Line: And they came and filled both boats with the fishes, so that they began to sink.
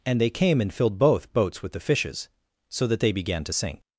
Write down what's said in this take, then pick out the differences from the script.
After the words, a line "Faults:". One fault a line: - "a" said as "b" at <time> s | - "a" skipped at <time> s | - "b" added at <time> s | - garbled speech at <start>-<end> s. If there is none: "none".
And they came and filled both boats with the fishes, so that they began to sink.
Faults:
none